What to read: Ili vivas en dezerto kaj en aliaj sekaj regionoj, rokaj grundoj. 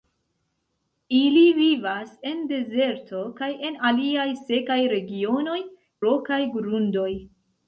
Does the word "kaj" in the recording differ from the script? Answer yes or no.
no